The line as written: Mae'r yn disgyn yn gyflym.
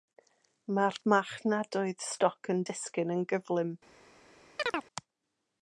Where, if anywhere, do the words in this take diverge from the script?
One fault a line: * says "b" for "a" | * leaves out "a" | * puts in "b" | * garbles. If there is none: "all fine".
* puts in "marchnadoedd stoc"